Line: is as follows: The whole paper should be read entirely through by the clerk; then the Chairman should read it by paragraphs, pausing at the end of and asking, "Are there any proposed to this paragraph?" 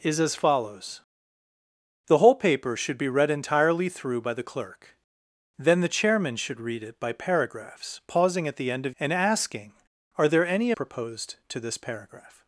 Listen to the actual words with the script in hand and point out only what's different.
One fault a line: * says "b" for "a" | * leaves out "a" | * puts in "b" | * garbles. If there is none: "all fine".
all fine